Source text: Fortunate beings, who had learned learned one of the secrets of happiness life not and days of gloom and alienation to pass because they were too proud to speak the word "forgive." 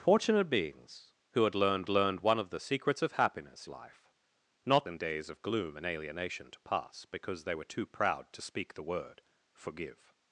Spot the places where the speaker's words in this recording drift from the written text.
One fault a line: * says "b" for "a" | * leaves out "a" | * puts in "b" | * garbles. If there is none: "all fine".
all fine